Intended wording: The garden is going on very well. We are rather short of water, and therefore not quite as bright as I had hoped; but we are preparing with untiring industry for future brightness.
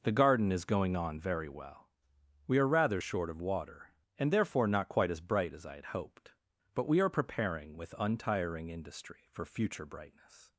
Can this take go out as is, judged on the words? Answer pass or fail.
pass